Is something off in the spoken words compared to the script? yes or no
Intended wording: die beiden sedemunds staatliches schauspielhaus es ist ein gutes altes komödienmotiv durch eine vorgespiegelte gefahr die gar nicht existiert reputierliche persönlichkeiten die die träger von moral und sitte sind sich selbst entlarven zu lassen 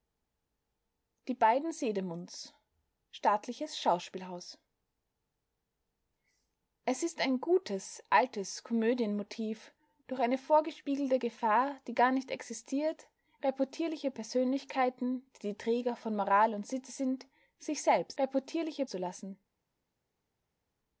yes